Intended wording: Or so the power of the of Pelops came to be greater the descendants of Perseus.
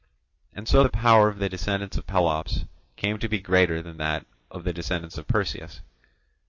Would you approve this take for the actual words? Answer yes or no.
no